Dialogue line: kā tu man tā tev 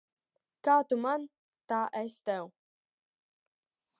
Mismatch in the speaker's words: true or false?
true